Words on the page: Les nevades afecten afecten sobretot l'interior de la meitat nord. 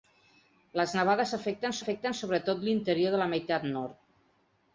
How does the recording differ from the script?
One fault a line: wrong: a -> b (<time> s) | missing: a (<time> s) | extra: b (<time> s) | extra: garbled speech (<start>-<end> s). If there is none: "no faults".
no faults